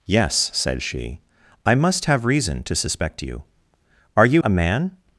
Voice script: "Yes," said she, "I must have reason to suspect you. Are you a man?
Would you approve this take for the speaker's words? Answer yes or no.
yes